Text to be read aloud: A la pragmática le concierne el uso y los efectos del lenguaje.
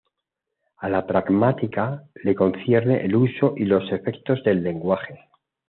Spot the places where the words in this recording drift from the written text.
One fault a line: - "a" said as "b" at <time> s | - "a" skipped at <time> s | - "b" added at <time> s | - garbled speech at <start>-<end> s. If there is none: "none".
none